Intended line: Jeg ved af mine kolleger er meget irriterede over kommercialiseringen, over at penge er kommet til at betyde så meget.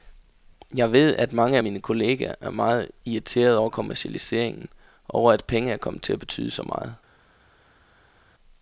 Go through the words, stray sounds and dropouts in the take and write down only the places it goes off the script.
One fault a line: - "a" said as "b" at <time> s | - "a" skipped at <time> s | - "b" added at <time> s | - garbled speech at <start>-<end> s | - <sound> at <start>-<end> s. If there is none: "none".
- "at mange" added at 1.1 s